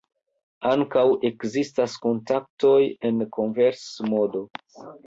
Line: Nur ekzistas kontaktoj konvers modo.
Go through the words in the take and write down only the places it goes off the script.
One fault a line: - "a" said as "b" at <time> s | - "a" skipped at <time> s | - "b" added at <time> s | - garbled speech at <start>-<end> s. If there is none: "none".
- "Nur" said as "Ankaŭ" at 0.7 s
- "en" added at 3.1 s